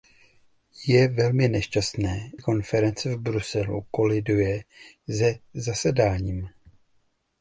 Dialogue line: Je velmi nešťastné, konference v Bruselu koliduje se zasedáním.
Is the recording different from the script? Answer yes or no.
no